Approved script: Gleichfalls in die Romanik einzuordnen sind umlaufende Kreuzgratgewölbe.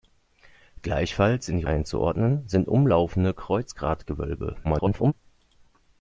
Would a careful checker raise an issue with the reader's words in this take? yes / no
yes